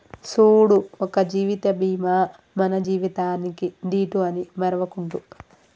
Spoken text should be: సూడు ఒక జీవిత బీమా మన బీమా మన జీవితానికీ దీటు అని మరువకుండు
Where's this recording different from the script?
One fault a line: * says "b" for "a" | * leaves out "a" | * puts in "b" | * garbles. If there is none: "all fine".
* leaves out "బీమా మన"